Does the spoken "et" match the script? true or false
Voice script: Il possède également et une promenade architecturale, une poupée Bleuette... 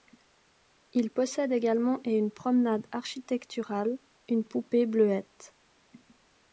true